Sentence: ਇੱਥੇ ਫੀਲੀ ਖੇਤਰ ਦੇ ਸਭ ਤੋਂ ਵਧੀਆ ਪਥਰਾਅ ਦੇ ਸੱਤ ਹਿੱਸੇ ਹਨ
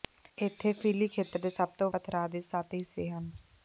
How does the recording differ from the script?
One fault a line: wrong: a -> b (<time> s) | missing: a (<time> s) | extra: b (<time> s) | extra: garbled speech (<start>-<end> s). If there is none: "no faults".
missing: ਵਧੀਆ (1.9 s)